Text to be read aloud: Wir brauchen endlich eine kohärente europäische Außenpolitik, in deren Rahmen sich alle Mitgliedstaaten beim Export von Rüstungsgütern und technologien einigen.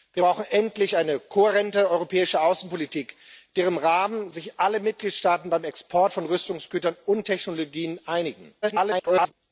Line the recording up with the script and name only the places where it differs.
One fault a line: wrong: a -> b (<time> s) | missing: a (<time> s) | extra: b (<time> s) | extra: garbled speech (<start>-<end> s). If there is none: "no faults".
extra: garbled speech (8.6-9.3 s)